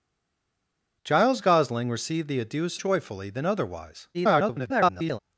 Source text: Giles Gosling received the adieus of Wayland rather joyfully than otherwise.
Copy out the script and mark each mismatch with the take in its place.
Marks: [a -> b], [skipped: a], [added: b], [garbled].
Giles Gosling received the adieus [skipped: of Wayland rather] joyfully than otherwise. [garbled]